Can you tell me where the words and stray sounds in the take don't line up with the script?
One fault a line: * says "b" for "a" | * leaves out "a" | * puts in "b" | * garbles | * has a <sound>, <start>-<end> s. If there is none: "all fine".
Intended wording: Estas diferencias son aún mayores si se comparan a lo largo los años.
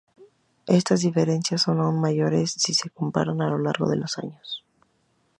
* puts in "de"